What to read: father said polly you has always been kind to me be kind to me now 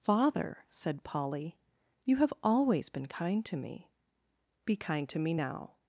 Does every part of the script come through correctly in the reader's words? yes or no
no